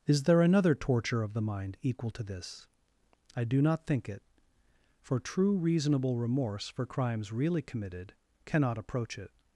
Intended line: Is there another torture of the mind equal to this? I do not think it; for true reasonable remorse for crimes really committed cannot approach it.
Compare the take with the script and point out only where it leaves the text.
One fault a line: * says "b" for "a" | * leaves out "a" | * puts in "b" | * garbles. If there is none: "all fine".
all fine